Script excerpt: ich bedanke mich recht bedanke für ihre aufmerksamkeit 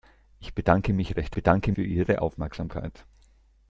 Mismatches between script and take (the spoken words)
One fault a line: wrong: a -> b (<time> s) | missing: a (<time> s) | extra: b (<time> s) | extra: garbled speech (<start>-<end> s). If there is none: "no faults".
no faults